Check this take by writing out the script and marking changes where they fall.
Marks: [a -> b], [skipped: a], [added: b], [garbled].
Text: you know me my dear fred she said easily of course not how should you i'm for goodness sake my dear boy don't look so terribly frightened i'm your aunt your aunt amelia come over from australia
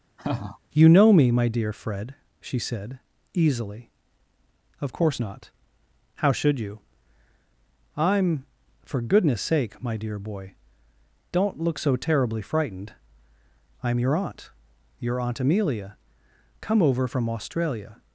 you know me my dear fred she said easily of course not how should you i'm for goodness sake my dear boy don't look so terribly frightened i'm your aunt your aunt amelia come over from australia